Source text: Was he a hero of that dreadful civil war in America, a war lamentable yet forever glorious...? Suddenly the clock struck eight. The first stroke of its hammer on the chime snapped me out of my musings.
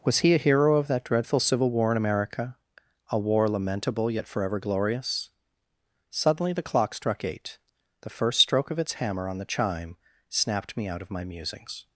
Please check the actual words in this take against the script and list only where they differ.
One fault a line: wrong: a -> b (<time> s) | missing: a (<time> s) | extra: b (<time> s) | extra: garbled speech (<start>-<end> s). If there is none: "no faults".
no faults